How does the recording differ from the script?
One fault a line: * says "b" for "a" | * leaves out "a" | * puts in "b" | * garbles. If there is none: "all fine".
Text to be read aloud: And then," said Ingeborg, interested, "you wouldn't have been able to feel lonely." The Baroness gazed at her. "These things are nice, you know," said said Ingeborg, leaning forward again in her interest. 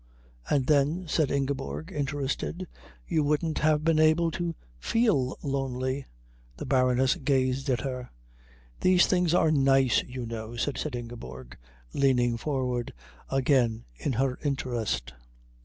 all fine